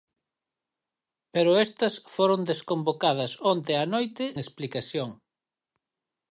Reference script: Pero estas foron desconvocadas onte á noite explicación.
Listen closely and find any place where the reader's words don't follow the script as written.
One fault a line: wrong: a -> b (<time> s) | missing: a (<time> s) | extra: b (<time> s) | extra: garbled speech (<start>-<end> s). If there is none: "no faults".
no faults